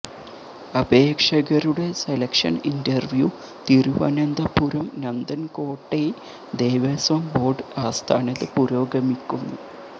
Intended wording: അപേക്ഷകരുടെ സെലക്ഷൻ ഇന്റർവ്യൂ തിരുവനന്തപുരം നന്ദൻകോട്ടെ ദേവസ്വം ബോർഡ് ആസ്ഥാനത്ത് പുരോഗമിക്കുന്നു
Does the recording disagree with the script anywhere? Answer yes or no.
no